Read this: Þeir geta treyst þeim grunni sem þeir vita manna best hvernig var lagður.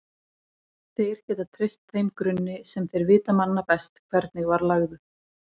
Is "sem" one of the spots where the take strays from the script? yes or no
no